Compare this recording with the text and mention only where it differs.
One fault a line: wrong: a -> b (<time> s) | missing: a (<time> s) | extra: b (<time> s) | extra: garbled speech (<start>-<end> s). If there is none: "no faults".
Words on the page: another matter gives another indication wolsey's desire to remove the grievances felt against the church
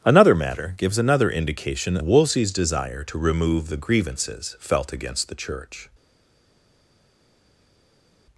no faults